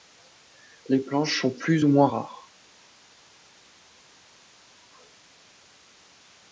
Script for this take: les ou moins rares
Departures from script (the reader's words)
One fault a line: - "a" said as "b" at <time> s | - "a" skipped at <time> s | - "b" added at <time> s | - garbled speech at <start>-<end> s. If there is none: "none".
- "planches sont plus" added at 1.0 s